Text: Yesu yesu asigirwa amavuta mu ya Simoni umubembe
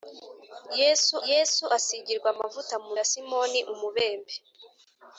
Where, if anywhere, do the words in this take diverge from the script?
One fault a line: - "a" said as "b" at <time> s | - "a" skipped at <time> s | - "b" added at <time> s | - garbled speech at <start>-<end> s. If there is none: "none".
none